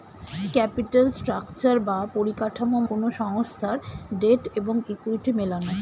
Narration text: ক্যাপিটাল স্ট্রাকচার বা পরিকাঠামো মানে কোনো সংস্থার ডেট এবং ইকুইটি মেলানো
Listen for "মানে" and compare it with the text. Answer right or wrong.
wrong